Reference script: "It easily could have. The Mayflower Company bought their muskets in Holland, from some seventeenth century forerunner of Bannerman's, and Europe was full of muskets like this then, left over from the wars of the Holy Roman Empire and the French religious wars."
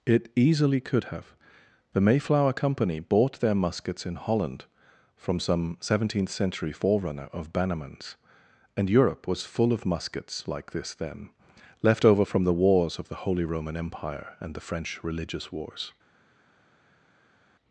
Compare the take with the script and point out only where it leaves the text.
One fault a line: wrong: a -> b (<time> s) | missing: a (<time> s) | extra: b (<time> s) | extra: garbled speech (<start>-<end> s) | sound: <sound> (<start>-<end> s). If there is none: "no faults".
no faults